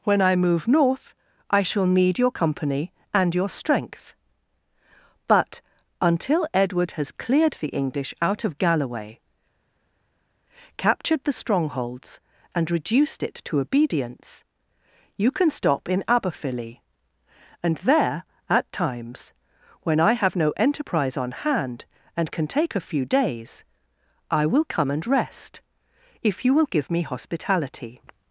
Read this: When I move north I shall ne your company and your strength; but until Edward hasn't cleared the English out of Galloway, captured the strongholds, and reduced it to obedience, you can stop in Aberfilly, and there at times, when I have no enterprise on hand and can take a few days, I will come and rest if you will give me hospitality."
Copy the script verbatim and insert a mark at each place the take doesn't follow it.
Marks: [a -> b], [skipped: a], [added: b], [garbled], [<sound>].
When I move north I shall [ne -> need] your company and your strength; but until Edward [hasn't -> has] cleared the English out of Galloway, captured the strongholds, and reduced it to obedience, you can stop in Aberfilly, and there at times, when I have no enterprise on hand and can take a few days, I will come and rest if you will give me hospitality."